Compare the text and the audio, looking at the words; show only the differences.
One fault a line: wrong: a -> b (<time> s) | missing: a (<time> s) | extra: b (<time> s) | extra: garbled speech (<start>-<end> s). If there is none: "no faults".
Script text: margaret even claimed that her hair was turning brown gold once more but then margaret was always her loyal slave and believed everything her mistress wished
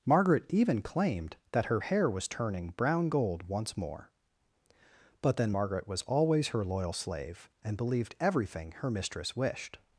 no faults